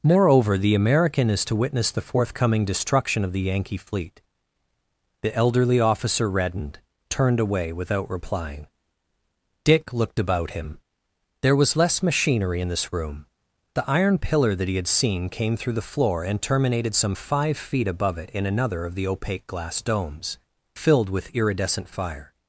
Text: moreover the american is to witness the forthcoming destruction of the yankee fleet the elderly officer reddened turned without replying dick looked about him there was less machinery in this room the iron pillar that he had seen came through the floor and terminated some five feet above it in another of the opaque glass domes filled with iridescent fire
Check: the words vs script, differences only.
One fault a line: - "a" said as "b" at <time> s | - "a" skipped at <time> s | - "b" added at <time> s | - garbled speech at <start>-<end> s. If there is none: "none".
- "away" added at 7.4 s